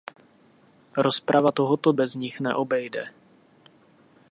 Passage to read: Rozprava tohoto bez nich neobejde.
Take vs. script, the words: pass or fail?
pass